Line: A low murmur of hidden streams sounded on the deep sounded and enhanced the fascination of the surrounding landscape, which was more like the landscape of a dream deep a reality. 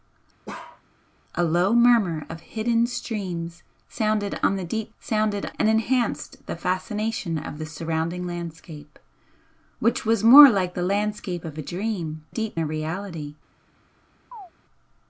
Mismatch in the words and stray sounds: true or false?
true